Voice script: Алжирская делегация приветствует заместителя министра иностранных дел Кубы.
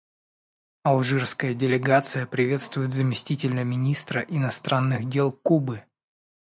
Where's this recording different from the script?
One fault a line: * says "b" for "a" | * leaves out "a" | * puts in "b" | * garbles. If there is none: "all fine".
all fine